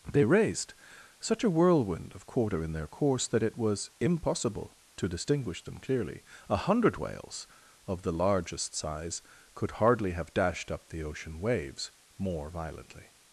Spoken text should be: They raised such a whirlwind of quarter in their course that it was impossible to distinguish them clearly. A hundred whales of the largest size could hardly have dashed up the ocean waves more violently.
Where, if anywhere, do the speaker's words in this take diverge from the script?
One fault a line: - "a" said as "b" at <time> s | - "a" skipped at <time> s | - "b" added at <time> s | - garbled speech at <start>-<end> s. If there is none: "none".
none